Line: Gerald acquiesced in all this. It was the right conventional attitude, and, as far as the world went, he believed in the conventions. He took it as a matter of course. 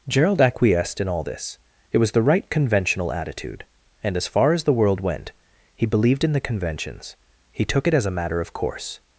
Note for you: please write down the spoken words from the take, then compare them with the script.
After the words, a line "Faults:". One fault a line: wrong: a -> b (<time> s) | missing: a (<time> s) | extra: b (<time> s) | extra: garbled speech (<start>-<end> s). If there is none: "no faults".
Gerald acquiesced in all this. It was the right conventional attitude, and, as far as the world went, he believed in the conventions. He took it as a matter of course.
Faults:
no faults